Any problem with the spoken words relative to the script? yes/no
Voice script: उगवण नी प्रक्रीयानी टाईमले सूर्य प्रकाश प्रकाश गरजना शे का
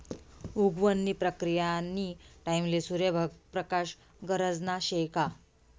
yes